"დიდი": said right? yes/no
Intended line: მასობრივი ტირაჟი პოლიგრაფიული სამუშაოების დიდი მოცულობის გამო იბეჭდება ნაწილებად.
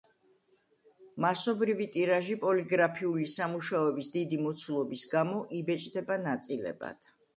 yes